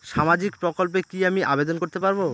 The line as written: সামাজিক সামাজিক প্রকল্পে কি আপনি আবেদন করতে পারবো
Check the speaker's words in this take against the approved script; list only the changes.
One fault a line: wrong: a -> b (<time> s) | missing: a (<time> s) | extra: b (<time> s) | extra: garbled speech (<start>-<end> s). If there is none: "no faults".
missing: সামাজিক (0.5 s)
wrong: আপনি -> আমি (1.2 s)